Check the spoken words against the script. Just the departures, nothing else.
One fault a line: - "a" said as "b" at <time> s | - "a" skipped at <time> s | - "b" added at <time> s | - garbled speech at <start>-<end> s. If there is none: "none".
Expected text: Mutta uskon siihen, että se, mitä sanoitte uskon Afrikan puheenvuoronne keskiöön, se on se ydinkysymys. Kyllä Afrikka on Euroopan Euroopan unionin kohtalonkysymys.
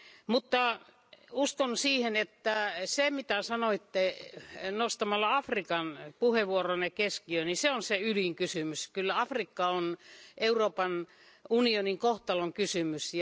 - "uskon" said as "nostamalla" at 4.7 s
- "niin" added at 7.5 s
- "Euroopan" skipped at 11.1 s